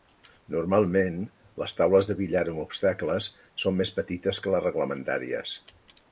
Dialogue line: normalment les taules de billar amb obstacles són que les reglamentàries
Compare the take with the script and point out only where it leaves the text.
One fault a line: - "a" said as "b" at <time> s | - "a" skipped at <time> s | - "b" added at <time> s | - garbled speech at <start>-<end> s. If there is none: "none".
- "més petites" added at 3.8 s